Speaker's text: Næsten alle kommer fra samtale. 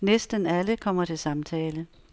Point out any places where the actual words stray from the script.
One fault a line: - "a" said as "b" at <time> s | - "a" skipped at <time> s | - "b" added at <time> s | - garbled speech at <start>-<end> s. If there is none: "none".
- "fra" said as "til" at 1.0 s